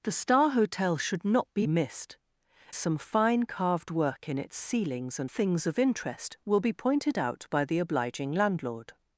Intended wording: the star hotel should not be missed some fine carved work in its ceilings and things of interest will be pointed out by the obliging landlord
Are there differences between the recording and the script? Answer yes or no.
no